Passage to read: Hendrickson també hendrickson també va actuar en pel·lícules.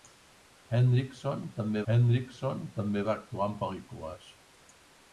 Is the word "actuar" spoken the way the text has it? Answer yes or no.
yes